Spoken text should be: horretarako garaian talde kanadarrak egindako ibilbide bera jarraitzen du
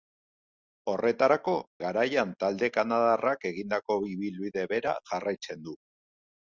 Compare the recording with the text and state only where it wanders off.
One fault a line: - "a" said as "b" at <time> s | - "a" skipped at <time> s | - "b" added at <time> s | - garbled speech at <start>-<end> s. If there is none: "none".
none